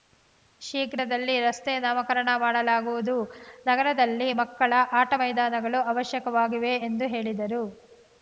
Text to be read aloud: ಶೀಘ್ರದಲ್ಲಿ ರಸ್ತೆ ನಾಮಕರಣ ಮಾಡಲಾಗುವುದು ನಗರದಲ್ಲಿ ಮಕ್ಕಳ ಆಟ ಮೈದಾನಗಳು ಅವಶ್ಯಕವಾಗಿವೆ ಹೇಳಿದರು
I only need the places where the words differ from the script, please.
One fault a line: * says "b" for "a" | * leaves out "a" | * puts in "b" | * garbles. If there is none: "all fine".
* puts in "ಎಂದು"